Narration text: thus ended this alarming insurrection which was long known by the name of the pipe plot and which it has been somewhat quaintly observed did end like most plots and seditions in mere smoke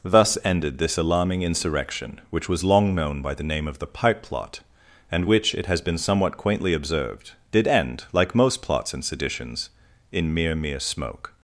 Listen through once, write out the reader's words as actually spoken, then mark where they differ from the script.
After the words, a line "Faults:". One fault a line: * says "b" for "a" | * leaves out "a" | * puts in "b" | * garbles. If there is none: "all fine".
thus ended this alarming insurrection which was long known by the name of the pipe plot and which it has been somewhat quaintly observed did end like most plots and seditions in mere mere smoke
Faults:
* puts in "mere"